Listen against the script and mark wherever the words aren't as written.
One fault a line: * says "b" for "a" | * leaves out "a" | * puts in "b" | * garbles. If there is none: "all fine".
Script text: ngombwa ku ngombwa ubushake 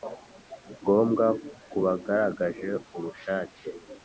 * says "bagaragaje" for "ngombwa"